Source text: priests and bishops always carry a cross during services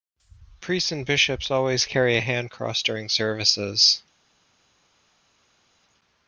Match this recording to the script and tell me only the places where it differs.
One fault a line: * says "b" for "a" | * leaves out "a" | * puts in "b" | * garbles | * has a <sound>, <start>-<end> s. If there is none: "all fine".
* puts in "hand"